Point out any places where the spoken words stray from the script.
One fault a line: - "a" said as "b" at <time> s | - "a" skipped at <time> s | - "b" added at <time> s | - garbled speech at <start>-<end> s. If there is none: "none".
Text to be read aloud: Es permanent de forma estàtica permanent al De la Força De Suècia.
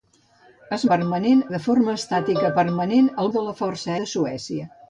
none